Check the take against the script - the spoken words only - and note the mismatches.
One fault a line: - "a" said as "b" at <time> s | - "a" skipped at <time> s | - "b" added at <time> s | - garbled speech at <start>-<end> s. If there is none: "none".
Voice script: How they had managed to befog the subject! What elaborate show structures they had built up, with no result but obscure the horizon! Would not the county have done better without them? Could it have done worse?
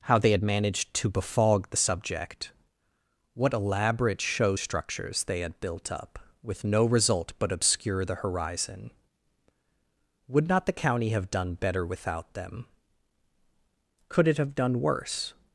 none